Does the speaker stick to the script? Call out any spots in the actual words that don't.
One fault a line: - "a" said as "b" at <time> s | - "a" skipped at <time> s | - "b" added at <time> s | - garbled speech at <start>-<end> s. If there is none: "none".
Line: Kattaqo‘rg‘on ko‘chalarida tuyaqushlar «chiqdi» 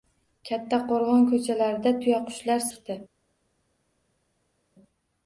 none